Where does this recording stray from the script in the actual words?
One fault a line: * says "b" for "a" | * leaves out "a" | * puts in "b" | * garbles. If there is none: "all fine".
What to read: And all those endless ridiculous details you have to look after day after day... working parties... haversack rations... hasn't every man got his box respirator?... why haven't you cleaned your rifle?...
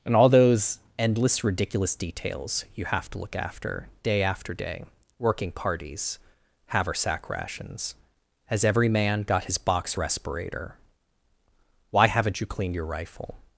* says "has" for "hasn't"